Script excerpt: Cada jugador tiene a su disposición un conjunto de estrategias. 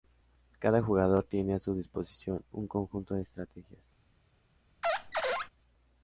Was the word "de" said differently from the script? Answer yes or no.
no